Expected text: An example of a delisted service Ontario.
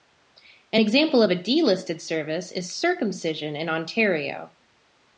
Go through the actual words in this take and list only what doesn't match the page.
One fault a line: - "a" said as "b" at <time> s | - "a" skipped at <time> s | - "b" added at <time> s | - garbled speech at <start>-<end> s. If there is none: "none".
- "is circumcision in" added at 2.5 s